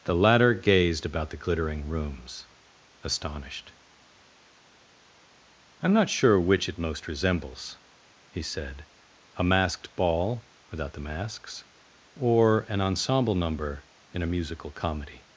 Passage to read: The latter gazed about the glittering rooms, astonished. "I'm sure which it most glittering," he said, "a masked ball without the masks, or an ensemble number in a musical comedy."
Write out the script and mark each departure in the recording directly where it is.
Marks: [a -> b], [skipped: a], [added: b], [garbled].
The latter gazed about the glittering rooms, astonished. "I'm [added: not] sure which it most [glittering," -> resembles] he said, "a masked ball without the masks, or an ensemble number in a musical comedy."